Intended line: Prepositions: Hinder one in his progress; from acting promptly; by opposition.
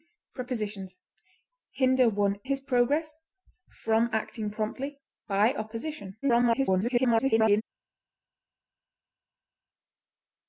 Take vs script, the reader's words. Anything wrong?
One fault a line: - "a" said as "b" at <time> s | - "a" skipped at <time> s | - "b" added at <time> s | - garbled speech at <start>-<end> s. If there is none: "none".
- "in" skipped at 2.4 s
- garbled speech at 6.2-7.6 s